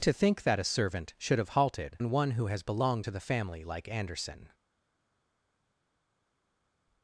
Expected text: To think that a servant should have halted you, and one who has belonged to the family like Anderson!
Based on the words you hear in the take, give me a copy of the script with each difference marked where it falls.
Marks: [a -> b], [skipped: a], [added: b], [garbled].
To think that a servant should have halted [skipped: you,] and one who has belonged to the family like Anderson!